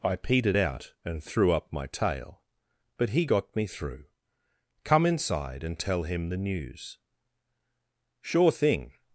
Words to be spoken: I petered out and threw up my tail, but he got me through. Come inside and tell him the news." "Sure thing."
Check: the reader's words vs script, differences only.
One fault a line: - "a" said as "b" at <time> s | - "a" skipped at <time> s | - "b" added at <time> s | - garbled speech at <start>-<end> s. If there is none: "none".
none